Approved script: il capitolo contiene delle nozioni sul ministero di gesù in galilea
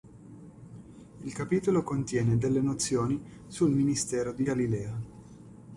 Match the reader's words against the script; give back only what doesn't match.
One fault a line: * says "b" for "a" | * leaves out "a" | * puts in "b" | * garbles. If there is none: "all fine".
* leaves out "gesù in"